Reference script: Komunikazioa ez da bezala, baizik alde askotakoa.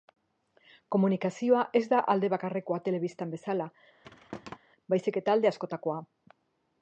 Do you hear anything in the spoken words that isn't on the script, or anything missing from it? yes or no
yes